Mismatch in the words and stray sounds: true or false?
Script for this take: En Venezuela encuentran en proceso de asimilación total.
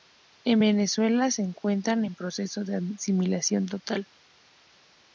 true